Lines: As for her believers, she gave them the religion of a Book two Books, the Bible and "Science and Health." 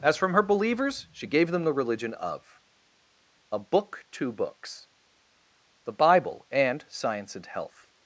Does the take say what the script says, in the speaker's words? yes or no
no